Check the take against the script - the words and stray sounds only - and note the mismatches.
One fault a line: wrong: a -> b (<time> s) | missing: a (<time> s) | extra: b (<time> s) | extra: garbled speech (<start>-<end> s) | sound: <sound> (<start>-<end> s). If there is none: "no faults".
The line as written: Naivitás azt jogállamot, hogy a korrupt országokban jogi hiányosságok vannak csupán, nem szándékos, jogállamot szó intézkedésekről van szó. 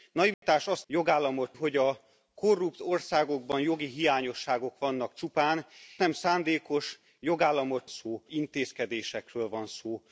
sound: dropout (0.3-0.4 s)